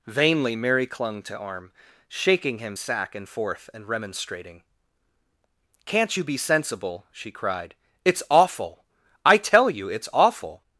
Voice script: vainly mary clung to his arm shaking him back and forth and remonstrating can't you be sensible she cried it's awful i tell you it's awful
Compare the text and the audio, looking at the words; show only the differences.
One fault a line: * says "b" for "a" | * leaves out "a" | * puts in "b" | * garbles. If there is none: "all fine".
* leaves out "his"
* says "sack" for "back"